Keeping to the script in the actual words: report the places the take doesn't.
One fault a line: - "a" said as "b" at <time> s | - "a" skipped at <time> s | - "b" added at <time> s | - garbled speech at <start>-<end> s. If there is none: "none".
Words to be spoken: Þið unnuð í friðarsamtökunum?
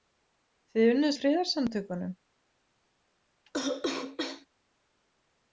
none